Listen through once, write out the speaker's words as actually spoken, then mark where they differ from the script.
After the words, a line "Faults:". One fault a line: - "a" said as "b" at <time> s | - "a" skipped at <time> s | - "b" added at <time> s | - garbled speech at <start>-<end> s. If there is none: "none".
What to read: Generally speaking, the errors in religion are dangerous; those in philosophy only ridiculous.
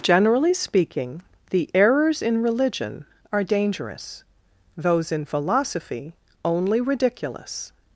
Generally speaking, the errors in religion are dangerous; those in philosophy only ridiculous.
Faults:
none